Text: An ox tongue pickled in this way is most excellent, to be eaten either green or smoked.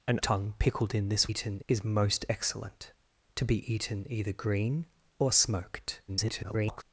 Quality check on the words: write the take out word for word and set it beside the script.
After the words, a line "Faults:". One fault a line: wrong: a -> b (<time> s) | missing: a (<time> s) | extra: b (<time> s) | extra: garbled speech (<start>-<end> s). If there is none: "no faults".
An tongue pickled in this eaten is most excellent, to be eaten either green or smoked. [garbled]
Faults:
missing: ox (0.2 s)
wrong: way -> eaten (1.3 s)
extra: garbled speech (6.1-6.8 s)